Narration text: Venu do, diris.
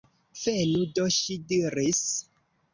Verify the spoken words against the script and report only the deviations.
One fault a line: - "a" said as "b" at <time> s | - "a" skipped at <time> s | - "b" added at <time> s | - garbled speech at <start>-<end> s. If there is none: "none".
- "ŝi" added at 1.2 s